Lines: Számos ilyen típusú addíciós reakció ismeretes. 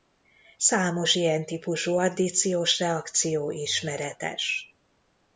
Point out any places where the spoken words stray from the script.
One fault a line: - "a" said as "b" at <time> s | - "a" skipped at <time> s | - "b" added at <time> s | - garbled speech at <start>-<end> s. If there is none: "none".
none